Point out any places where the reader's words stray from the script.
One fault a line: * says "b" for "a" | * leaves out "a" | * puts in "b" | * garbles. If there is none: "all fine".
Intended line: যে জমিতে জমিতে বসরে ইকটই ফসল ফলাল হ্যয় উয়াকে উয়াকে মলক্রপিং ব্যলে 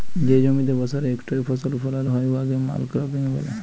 * leaves out "জমিতে"
* leaves out "উয়াকে"